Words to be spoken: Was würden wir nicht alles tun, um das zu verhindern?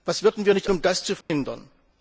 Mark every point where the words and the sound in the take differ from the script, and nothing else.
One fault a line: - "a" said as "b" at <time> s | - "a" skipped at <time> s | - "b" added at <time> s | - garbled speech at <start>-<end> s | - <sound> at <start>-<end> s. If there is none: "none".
- "alles tun" skipped at 0.7 s
- dropout at 1.2-1.3 s